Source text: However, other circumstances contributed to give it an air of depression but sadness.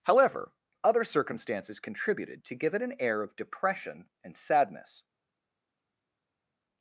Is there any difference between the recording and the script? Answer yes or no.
yes